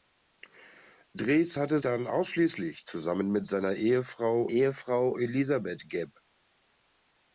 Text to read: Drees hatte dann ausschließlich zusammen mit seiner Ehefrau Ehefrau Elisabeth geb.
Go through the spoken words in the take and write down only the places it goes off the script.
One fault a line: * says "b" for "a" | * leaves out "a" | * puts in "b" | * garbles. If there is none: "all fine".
all fine